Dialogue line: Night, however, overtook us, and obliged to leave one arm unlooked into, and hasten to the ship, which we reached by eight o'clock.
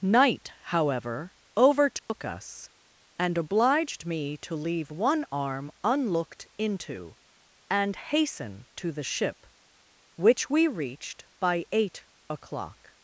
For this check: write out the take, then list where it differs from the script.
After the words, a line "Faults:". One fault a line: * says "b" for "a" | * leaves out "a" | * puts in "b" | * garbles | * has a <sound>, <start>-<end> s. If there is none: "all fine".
Night, however, overtook us, and obliged me to leave one arm unlooked into, and hasten to the ship, which we reached by eight o'clock.
Faults:
* has a dropout, 2.0-2.1 s
* puts in "me"